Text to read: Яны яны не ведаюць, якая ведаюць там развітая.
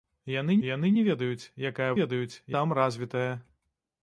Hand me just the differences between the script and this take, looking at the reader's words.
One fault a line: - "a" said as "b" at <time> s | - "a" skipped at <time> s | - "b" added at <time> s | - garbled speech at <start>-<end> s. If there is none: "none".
none